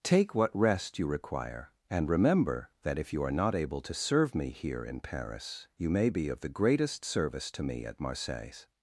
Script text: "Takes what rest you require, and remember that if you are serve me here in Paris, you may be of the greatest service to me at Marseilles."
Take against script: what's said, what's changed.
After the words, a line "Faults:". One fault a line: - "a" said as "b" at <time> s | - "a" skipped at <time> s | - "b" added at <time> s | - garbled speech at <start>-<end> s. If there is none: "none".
"Take what rest you require, and remember that if you are not able to serve me here in Paris, you may be of the greatest service to me at Marseilles."
Faults:
- "Takes" said as "Take" at 0.0 s
- "not able to" added at 3.3 s